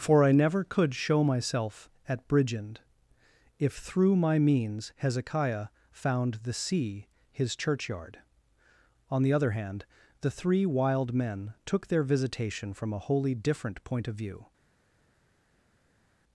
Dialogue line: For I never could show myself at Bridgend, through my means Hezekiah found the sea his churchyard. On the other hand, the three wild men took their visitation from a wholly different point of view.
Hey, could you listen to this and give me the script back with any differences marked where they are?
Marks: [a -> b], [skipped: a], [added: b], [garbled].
For I never could show myself at Bridgend, [added: if] through my means Hezekiah found the sea his churchyard. On the other hand, the three wild men took their visitation from a wholly different point of view.